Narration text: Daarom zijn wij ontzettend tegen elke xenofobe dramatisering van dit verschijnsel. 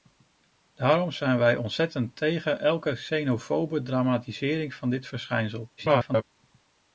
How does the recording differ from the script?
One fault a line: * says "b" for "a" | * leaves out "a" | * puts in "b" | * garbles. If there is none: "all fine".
* garbles